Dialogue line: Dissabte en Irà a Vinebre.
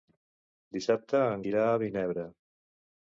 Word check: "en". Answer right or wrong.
right